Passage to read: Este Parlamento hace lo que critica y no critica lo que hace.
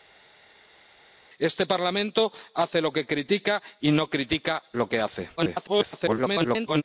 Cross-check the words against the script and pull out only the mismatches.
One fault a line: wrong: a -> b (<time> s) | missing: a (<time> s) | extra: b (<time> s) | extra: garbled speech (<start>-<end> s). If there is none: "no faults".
extra: garbled speech (5.4-6.8 s)